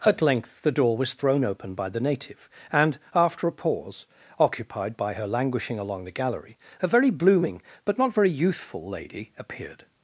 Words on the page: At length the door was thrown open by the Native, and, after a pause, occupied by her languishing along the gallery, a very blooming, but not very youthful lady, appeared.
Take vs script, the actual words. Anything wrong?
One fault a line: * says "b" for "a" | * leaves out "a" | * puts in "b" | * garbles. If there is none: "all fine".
all fine